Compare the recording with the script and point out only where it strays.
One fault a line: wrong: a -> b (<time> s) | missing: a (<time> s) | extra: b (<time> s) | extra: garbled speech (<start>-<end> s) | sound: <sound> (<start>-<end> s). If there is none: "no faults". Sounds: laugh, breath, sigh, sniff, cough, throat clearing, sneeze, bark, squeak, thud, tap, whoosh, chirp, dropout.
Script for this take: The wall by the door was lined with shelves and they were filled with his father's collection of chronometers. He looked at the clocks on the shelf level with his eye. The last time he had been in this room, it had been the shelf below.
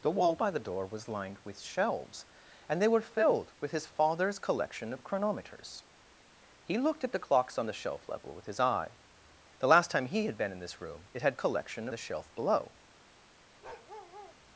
wrong: been -> collection (11.3 s)
sound: bark (13.6-14.4 s)